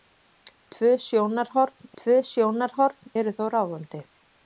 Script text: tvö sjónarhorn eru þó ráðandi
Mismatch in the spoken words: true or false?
true